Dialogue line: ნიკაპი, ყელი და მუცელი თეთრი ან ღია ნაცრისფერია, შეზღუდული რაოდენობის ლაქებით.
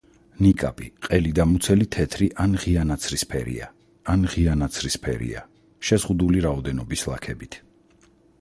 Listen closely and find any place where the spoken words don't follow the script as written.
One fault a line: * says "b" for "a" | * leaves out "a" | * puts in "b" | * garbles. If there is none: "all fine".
* puts in "ან ღია ნაცრისფერია"